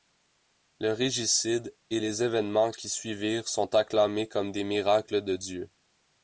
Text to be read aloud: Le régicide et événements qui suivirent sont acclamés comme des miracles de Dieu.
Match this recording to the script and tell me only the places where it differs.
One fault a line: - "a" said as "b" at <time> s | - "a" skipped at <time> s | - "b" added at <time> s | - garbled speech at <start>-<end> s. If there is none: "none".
- "les" added at 2.0 s